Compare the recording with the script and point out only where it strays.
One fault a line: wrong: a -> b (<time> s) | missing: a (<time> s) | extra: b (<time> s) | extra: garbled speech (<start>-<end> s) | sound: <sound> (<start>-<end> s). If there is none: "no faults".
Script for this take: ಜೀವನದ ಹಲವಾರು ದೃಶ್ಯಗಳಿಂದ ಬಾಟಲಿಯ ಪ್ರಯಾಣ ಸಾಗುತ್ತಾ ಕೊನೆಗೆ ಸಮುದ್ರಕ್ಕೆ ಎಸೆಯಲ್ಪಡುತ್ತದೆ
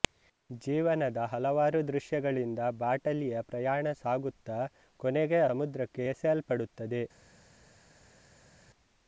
no faults